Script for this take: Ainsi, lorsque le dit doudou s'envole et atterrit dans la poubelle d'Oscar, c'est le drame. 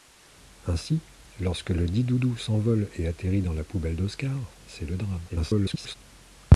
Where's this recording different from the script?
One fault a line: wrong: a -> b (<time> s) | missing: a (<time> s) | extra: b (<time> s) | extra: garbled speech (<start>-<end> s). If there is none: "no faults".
extra: garbled speech (5.3-6.0 s)